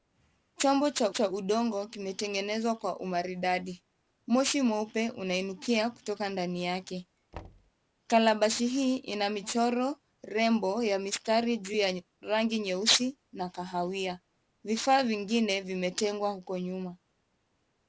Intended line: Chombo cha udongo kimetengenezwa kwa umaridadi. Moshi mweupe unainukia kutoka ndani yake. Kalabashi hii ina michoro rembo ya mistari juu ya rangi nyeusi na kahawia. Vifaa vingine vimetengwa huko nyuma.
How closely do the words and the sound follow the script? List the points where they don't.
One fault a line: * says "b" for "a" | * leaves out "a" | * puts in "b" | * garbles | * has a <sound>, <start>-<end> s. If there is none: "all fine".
* puts in "cha"
* has a thud, 7.3-7.7 s